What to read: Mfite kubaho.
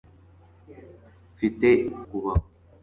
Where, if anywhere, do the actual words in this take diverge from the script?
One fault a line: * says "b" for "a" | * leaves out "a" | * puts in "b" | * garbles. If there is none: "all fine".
all fine